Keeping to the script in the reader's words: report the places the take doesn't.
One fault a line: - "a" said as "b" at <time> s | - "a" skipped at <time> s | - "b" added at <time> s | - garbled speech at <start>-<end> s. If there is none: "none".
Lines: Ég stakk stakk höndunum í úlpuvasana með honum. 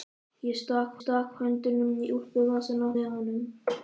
none